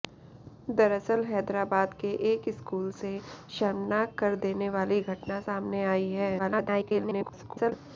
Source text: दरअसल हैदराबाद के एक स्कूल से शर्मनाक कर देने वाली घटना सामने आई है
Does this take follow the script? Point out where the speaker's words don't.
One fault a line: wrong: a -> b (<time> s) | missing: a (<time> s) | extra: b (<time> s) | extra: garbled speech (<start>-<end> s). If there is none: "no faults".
extra: garbled speech (6.4-7.7 s)